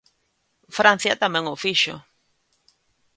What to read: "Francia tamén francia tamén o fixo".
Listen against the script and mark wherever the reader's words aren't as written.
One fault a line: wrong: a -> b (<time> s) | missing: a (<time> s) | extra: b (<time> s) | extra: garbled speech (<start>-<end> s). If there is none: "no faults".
missing: francia tamén (1.4 s)